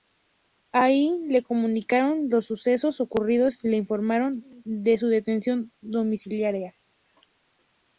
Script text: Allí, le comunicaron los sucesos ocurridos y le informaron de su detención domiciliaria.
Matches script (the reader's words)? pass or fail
pass